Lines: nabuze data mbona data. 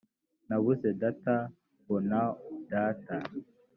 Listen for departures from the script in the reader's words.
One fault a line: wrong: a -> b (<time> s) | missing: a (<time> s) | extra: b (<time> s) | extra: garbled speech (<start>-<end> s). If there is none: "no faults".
no faults